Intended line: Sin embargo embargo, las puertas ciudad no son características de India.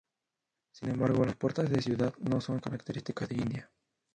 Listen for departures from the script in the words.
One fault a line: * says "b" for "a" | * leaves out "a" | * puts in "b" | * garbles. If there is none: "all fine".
* leaves out "embargo"
* puts in "de"